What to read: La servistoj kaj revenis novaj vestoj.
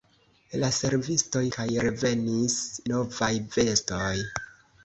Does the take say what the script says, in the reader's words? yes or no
yes